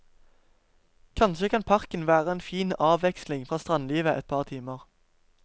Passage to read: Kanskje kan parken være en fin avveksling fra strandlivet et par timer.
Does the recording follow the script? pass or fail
pass